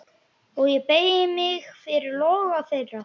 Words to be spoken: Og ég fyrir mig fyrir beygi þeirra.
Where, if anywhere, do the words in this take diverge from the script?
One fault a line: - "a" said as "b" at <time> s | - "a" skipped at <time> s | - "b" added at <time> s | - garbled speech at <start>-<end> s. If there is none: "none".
- "fyrir" said as "beygi" at 0.9 s
- "beygi" said as "loga" at 2.2 s